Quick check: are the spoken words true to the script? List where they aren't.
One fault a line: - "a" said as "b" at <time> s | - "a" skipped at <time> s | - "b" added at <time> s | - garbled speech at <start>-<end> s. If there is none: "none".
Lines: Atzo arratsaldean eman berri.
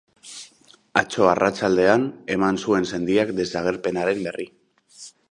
- "zuen sendiak desagerpenaren" added at 2.6 s